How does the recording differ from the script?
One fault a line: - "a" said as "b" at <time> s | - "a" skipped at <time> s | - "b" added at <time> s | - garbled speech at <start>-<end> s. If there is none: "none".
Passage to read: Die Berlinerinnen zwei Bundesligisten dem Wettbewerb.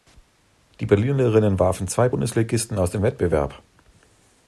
- "warfen" added at 1.6 s
- "aus" added at 2.8 s